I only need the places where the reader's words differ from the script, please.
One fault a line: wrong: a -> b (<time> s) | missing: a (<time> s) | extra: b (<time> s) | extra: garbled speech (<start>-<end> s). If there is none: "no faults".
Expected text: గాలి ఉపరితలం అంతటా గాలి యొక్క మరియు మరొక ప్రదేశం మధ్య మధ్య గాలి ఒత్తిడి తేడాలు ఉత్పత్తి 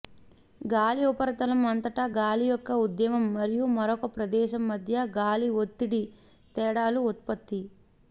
extra: ఉద్యమం (2.9 s)
missing: మధ్య (5.1 s)